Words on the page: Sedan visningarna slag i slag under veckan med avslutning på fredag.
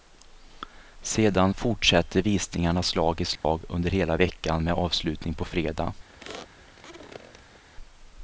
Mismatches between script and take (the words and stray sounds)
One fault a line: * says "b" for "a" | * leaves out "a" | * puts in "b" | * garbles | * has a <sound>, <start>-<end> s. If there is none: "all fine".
* puts in "fortsätter"
* has a dropout, 3.4-3.4 s
* puts in "hela"
* has a squeak, 6.1-7.6 s